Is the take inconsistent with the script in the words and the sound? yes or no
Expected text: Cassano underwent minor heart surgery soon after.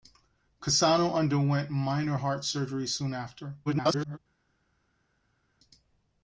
yes